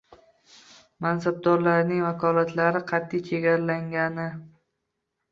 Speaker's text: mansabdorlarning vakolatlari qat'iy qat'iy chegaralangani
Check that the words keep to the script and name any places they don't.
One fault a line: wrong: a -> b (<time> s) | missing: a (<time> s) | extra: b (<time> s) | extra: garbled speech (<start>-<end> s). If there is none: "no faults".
missing: qat'iy (3.2 s)